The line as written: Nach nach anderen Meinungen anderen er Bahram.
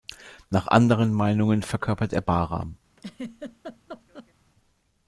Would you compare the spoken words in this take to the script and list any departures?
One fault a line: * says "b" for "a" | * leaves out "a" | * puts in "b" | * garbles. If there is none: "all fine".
* leaves out "nach"
* says "verkörpert" for "anderen"